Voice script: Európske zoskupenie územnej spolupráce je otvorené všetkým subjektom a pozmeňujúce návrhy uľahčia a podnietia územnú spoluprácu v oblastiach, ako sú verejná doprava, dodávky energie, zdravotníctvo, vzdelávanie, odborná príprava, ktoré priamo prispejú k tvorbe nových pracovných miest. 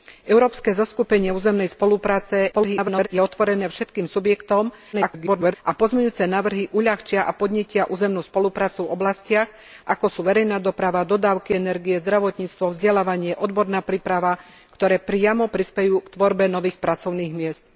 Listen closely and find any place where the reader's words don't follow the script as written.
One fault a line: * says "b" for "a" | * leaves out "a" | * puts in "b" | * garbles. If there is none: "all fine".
* garbles
* garbles